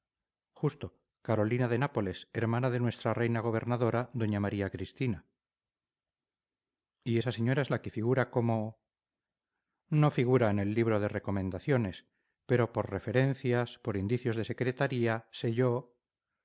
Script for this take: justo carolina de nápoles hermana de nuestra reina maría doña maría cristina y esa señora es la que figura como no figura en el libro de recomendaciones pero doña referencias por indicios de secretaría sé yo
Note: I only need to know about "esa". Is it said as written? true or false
true